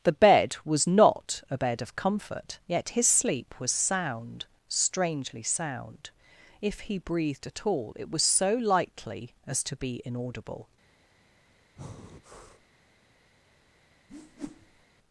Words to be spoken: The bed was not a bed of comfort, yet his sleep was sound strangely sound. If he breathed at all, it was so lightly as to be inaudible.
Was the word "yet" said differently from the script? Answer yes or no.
no